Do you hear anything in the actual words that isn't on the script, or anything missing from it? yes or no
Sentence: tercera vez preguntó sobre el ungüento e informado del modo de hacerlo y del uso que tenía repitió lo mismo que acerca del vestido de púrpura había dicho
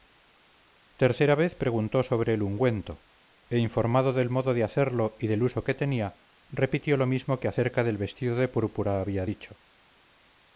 no